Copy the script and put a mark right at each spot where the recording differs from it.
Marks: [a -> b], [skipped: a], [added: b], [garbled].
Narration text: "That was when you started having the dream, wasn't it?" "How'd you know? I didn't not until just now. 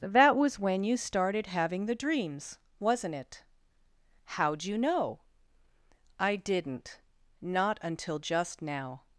"That was when you started having the [dream, -> dreams] wasn't it?" "How'd you know? I didn't not until just now.